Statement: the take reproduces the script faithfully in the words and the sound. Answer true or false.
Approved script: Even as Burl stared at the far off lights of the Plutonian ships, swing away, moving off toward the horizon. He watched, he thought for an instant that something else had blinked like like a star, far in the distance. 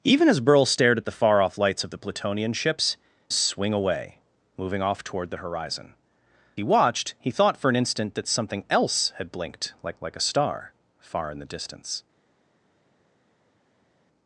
true